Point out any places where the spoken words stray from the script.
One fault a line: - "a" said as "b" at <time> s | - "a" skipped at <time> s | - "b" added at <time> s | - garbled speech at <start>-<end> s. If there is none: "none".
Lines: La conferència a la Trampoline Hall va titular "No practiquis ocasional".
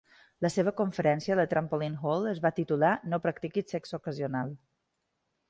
- "seva" added at 0.5 s
- "es" added at 2.3 s
- "sexe" added at 3.8 s